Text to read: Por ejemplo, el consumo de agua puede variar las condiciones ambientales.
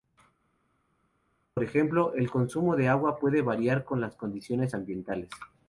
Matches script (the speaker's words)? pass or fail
fail